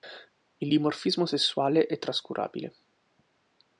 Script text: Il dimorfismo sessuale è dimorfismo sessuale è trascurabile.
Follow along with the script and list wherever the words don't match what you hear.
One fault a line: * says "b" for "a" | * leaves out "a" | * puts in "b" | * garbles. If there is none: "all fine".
* leaves out "dimorfismo sessuale è"